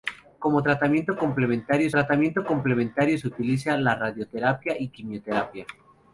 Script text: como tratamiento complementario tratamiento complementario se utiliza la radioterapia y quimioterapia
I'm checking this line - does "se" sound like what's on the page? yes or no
yes